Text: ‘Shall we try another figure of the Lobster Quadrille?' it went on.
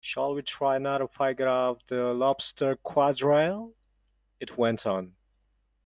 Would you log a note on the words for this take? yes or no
no